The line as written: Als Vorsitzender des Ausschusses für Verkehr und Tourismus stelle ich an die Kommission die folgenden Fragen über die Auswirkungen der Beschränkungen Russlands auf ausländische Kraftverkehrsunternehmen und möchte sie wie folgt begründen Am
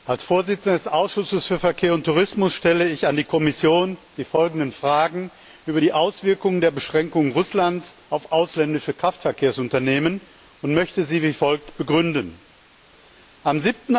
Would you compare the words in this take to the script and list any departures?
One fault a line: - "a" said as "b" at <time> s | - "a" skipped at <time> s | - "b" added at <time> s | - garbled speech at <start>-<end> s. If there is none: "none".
none